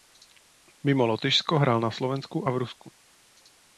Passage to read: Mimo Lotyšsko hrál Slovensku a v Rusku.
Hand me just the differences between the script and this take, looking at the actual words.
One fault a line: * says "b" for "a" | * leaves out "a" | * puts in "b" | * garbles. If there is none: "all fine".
* puts in "na"